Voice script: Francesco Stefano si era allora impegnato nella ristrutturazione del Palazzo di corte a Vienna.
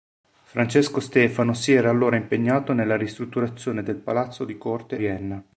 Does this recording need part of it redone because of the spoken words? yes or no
yes